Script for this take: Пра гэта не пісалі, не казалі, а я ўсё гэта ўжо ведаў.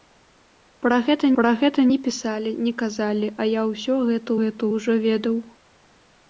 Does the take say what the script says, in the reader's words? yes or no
no